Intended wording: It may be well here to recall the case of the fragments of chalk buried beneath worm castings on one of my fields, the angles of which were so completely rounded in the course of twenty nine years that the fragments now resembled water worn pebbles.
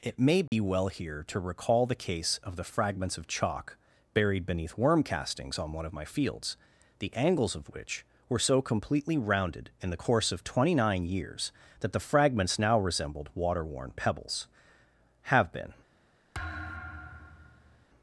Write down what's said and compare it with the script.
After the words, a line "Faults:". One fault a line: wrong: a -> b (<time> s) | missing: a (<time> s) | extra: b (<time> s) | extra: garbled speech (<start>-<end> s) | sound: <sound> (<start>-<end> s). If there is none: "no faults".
It may be well here to recall the case of the fragments of chalk buried beneath worm castings on one of my fields, the angles of which were so completely rounded in the course of twenty nine years that the fragments now resembled water worn pebbles. have been
Faults:
sound: dropout (0.5-0.5 s)
extra: have been (15.2 s)
sound: thud (16.3-17.9 s)